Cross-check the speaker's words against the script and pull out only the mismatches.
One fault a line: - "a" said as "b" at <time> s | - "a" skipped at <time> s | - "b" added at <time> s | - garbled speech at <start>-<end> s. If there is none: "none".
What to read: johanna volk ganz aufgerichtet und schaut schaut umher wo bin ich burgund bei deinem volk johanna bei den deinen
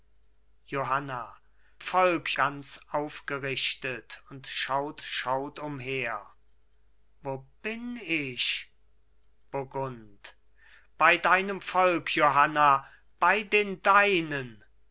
none